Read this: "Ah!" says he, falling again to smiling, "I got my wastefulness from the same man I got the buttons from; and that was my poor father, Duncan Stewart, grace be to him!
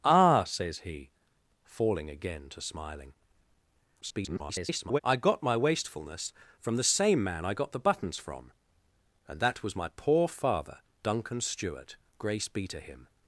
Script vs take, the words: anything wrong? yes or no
yes